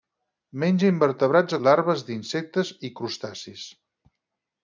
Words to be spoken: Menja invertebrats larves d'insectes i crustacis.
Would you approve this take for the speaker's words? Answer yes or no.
yes